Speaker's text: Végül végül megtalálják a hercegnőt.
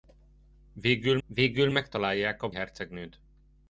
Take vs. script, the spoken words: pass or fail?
pass